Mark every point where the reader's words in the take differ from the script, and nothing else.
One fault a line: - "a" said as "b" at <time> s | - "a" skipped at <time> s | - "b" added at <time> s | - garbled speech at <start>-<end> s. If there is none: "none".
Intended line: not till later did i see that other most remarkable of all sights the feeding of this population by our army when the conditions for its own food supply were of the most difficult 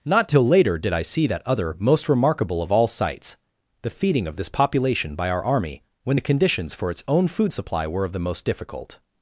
none